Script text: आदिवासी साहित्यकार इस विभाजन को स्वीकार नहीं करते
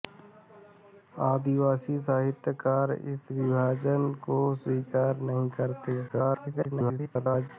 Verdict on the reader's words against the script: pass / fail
fail